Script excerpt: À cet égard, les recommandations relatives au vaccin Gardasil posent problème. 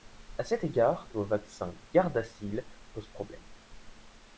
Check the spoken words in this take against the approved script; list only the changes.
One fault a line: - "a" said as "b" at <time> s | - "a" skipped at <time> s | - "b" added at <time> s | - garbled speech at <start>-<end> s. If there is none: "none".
- "les recommandations relatives" skipped at 1.1 s